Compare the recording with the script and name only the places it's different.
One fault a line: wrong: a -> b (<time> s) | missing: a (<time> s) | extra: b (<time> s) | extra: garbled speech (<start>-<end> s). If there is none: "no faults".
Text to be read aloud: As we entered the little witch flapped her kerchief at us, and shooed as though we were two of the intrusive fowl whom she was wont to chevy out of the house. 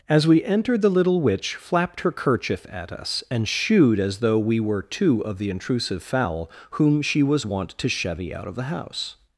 no faults